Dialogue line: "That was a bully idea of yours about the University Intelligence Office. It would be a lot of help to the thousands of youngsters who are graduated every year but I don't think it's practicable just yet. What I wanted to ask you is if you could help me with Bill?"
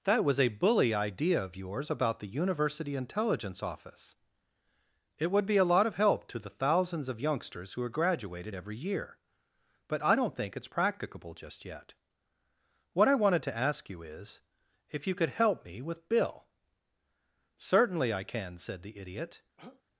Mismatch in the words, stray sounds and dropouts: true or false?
true